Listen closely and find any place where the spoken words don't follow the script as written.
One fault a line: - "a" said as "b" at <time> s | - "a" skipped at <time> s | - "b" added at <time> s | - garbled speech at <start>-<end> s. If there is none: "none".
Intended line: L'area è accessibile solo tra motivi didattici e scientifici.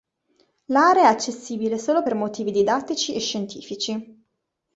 - "tra" said as "per" at 2.0 s